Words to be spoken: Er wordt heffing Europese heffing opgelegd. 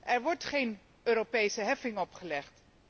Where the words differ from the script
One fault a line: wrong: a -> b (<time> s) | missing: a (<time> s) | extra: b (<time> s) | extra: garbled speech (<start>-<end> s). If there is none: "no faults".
wrong: heffing -> geen (0.4 s)